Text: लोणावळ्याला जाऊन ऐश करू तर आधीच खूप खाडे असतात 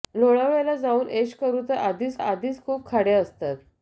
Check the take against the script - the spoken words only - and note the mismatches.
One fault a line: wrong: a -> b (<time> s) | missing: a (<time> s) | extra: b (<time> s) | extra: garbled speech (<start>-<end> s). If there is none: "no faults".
extra: आधीच (2.2 s)